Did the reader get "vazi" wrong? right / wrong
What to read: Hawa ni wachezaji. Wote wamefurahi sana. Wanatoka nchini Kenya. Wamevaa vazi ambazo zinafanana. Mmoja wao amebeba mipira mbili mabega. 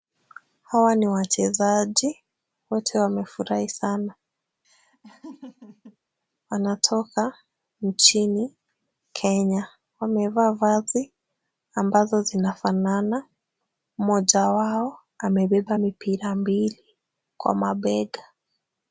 right